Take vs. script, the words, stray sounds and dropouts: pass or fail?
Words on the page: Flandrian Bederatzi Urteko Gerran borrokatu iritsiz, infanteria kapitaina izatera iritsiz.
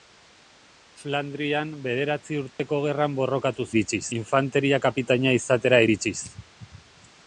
fail